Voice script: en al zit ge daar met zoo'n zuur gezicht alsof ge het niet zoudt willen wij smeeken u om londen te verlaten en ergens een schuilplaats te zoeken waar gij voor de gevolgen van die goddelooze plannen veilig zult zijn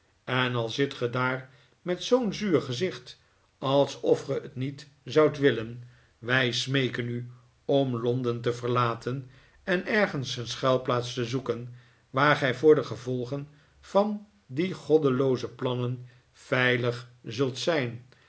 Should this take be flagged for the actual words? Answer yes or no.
no